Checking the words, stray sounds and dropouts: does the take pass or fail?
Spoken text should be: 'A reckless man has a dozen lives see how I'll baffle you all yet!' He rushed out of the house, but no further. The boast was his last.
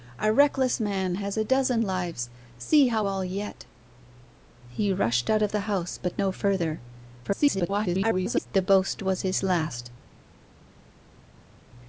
fail